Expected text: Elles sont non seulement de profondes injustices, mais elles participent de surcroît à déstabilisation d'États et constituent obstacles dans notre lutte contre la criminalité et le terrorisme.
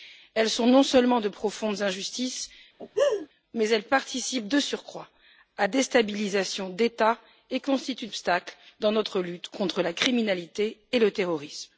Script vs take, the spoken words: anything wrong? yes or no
no